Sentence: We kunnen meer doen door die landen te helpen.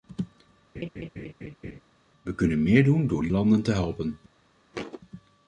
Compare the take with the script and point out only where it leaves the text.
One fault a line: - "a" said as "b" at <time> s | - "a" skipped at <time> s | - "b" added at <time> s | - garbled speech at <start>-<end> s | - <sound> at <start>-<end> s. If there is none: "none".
- laugh at 0.7-1.8 s
- thud at 4.7-5.0 s